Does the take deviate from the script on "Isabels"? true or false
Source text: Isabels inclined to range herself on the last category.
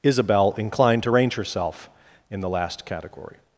true